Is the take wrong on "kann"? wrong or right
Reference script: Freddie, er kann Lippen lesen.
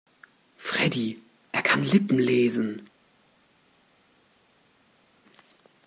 right